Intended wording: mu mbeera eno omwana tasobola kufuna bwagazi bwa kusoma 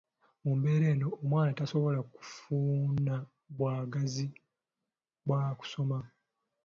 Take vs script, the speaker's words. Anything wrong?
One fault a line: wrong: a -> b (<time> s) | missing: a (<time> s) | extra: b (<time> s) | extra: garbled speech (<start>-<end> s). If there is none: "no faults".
no faults